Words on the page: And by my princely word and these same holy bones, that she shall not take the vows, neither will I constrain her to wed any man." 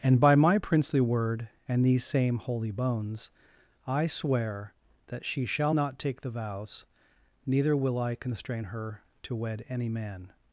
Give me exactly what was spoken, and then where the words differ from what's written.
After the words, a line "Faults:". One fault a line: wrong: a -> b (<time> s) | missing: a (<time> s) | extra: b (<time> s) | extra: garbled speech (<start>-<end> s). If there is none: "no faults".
And by my princely word and these same holy bones, I swear that she shall not take the vows, neither will I constrain her to wed any man."
Faults:
extra: I swear (3.9 s)